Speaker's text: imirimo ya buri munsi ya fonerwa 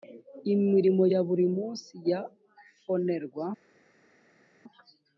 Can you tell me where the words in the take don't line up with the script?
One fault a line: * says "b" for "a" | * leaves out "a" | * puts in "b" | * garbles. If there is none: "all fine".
all fine